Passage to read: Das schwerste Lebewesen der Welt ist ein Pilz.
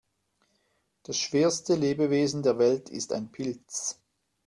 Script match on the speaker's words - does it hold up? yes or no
yes